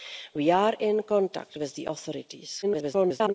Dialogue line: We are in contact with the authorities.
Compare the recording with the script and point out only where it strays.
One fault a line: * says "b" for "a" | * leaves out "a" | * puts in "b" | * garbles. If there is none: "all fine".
* garbles